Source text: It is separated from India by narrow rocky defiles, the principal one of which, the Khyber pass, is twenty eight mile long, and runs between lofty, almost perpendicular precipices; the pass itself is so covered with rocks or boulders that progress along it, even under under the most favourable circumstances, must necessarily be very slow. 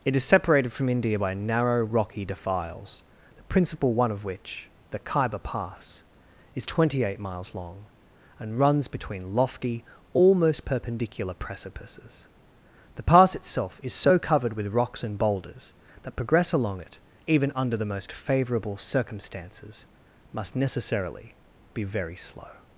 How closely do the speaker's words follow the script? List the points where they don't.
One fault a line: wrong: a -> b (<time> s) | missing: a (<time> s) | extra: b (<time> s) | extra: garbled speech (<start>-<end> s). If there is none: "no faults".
wrong: mile -> miles (7.2 s)
wrong: or -> and (15.0 s)
missing: under (17.7 s)